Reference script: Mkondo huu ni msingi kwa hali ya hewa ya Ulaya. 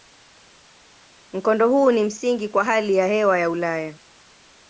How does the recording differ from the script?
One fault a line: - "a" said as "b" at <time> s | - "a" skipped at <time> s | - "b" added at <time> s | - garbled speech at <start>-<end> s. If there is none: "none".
none